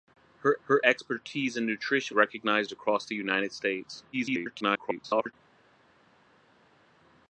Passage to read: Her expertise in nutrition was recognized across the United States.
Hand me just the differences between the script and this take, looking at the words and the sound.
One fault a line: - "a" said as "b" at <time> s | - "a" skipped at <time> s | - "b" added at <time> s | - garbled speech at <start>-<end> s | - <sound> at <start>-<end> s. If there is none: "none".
- "her" added at 0.6 s
- "was" skipped at 2.2 s
- garbled speech at 4.1-5.3 s